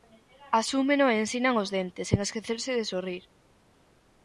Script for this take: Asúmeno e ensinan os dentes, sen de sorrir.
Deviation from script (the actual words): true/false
true